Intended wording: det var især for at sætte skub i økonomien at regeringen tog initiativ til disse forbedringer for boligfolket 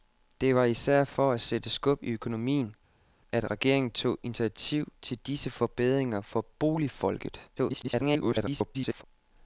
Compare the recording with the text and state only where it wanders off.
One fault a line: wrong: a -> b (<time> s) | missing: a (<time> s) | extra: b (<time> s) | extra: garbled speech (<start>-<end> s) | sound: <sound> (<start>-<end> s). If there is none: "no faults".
extra: garbled speech (7.6-9.0 s)